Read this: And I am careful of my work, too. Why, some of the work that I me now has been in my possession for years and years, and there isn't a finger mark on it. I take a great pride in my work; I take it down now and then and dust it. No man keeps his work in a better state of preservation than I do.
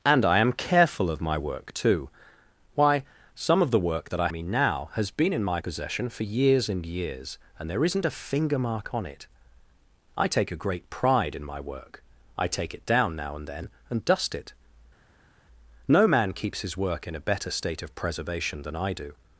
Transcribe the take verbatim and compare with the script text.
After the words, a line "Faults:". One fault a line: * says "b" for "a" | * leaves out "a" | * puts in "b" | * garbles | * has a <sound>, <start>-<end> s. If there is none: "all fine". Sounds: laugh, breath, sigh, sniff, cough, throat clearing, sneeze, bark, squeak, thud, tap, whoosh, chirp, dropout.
And I am careful of my work, too. Why, some of the work that I me now has been in my possession for years and years, and there isn't a finger mark on it. I take a great pride in my work; I take it down now and then and dust it. No man keeps his work in a better state of preservation than I do.
Faults:
all fine